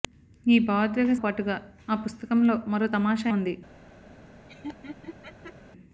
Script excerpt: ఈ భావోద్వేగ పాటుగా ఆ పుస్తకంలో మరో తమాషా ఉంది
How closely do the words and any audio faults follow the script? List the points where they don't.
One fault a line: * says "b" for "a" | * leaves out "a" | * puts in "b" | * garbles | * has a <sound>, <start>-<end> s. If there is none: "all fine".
* has a laugh, 4.5-5.6 s